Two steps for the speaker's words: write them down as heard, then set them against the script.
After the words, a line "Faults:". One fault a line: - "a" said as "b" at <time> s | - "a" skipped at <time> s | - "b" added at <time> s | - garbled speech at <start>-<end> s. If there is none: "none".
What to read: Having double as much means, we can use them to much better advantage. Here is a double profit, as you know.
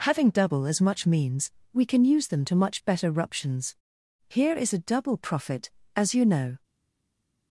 Having double as much means, we can use them to much better ruptions. Here is a double profit, as you know.
Faults:
- "advantage" said as "ruptions" at 3.1 s